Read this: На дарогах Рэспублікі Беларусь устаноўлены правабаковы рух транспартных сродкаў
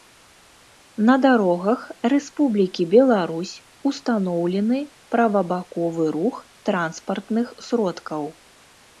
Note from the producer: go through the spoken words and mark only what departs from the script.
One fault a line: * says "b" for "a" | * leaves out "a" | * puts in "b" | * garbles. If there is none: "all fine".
all fine